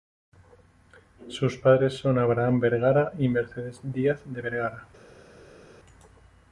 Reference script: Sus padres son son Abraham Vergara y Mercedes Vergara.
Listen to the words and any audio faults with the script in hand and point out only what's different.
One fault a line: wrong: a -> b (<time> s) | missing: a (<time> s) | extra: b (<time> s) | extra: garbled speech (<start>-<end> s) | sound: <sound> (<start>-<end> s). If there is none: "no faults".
missing: son (2.2 s)
extra: Díaz de (3.8 s)